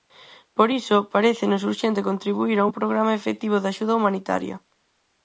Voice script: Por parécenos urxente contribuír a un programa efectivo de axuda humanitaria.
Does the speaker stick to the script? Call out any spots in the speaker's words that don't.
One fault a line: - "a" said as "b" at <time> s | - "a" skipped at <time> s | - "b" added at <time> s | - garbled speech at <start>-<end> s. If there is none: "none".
- "iso" added at 0.8 s